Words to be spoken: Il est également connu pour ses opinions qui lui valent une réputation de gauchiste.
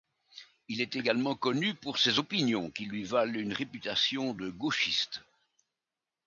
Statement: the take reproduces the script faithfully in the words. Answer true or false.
true